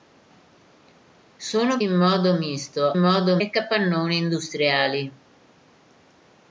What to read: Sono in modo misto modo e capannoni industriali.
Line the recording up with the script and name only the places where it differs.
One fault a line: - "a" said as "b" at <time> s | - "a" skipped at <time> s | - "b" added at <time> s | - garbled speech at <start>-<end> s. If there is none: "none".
none